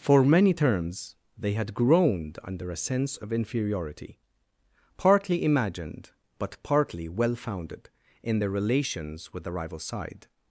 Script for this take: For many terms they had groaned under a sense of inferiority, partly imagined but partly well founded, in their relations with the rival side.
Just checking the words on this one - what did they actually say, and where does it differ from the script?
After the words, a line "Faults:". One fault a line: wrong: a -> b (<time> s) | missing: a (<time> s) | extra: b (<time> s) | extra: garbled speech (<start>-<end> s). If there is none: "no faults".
For many terms they had groaned under a sense of inferiority, partly imagined but partly well founded, in their relations with the rival side.
Faults:
no faults